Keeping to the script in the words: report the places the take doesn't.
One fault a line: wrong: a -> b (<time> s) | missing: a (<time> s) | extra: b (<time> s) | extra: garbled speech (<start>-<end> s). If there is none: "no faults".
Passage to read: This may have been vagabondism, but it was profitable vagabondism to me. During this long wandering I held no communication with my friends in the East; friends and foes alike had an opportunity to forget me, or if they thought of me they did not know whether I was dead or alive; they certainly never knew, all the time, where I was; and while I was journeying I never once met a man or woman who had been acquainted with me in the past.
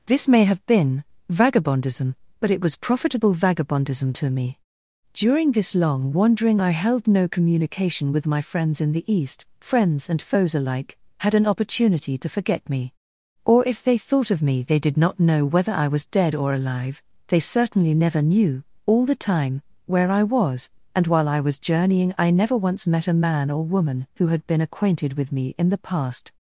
no faults